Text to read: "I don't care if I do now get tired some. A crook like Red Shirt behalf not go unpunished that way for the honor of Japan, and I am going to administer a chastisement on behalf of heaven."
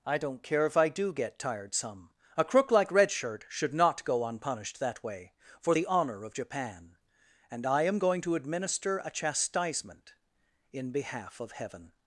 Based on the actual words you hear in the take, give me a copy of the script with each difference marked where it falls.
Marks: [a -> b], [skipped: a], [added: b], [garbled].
"I don't care if I do [skipped: now] get tired some. A crook like Red Shirt [behalf -> should] not go unpunished that way for the honor of Japan, and I am going to administer a chastisement [on -> in] behalf of heaven."